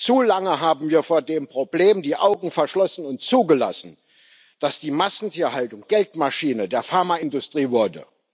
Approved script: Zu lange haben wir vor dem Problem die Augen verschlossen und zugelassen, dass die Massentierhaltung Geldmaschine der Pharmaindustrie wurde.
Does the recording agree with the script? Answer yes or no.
yes